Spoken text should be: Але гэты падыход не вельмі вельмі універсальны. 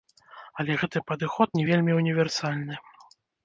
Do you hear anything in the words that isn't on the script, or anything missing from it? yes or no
yes